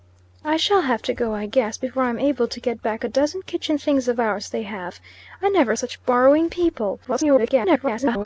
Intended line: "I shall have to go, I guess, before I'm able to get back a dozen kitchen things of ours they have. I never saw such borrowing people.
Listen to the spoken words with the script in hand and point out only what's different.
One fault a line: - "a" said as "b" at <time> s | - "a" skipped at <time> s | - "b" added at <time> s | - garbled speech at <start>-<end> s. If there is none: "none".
- "saw" skipped at 5.8 s
- garbled speech at 7.0-8.3 s